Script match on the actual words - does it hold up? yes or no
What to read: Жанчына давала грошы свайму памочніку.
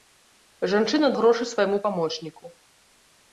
no